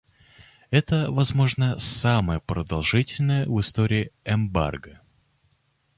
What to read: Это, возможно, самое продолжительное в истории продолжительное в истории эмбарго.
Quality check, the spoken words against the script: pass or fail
fail